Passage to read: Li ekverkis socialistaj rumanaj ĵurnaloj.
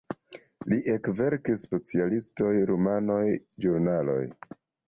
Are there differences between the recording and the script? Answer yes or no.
no